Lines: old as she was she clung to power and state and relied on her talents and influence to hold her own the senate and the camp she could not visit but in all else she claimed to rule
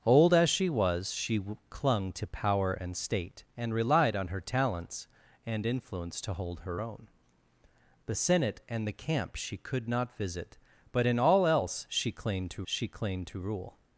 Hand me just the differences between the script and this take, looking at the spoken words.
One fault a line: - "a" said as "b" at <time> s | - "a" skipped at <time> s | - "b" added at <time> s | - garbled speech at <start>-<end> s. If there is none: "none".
- "she claimed to" added at 12.6 s